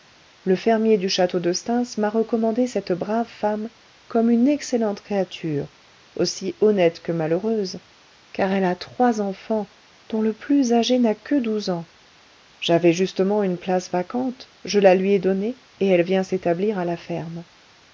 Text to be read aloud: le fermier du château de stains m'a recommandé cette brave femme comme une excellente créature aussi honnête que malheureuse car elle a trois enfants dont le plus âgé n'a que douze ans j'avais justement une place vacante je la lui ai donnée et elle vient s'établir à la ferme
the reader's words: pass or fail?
pass